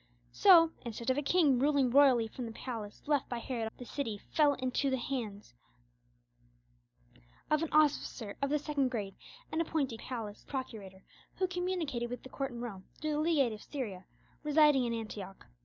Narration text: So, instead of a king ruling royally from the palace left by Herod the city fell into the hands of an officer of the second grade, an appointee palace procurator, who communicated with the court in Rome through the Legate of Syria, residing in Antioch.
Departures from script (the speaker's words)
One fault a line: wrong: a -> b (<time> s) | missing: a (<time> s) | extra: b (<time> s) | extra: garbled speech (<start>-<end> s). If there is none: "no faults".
no faults